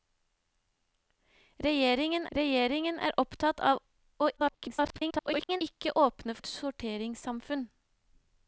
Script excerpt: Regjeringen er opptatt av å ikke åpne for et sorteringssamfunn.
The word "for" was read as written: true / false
false